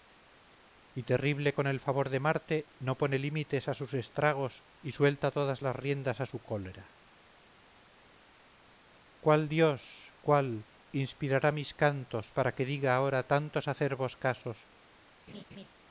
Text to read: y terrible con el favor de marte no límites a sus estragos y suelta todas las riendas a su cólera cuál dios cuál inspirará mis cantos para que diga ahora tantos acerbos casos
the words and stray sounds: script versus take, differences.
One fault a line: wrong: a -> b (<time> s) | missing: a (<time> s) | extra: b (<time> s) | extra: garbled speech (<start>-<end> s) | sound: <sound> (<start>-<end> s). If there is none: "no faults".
extra: pone (3.0 s)
sound: laugh (15.3-15.7 s)